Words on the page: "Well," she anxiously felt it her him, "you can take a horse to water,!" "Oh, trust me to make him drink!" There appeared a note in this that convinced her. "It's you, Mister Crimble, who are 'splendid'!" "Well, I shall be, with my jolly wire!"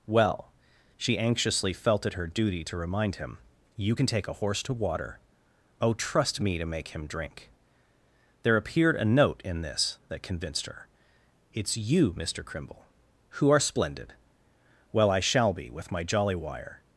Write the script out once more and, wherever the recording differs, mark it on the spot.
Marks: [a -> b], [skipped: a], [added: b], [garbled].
"Well," she anxiously felt it her [added: duty to remind] him, "you can take a horse to water,!" "Oh, trust me to make him drink!" There appeared a note in this that convinced her. "It's you, Mister Crimble, who are 'splendid'!" "Well, I shall be, with my jolly wire!"